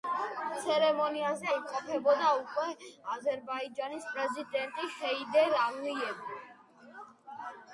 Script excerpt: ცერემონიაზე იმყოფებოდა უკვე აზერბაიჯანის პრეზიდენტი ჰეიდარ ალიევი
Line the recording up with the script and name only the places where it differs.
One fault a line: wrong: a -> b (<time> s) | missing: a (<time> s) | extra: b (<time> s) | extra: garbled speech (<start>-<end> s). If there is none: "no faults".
no faults